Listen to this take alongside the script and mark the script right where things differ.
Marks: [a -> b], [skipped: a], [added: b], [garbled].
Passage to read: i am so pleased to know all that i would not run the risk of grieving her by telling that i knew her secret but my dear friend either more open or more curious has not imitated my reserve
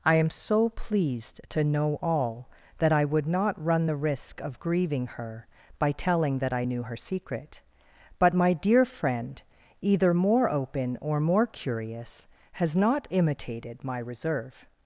i am so pleased to know all that i would not run the risk of grieving her by telling that i knew her secret but my dear friend either more open or more curious has not imitated my reserve